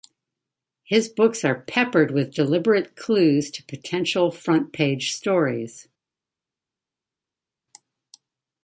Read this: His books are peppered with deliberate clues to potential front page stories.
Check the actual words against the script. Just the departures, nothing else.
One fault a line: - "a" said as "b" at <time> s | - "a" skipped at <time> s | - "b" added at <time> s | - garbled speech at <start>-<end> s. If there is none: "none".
none